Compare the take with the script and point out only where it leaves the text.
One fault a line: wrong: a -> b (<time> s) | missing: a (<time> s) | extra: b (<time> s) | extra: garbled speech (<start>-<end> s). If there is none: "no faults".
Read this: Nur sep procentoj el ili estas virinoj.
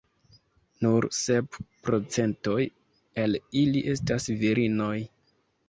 no faults